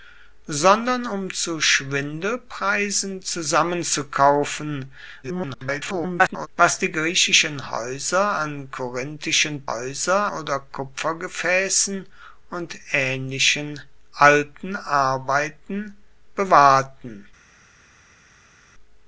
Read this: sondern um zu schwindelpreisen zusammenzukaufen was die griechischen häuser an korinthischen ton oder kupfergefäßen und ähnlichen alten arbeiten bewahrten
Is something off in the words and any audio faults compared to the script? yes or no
yes